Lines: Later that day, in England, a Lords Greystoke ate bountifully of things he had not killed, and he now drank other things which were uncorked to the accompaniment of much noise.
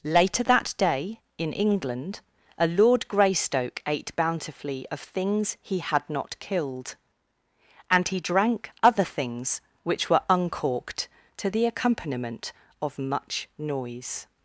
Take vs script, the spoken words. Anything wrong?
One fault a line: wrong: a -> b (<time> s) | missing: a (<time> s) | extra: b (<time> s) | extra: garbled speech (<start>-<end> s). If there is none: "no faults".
wrong: Lords -> Lord (2.7 s)
missing: now (8.2 s)